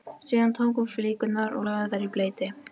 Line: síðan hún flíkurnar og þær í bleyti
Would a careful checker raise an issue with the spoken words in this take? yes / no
yes